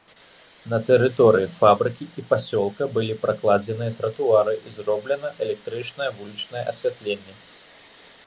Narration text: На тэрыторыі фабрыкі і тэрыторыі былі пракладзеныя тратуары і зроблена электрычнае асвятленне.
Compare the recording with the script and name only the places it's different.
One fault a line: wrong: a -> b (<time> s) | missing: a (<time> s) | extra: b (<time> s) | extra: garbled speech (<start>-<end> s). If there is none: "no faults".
wrong: тэрыторыі -> пасёлка (2.3 s)
extra: вулічнае (6.2 s)